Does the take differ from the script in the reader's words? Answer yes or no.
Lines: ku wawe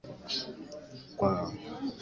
no